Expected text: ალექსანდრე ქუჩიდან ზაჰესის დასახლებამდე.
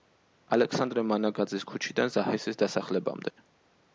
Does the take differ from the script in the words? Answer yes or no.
yes